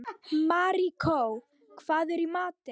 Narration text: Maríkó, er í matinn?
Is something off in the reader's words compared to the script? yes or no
yes